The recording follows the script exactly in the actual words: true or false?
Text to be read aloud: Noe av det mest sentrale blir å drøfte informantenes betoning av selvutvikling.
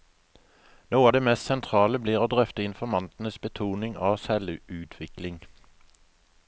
true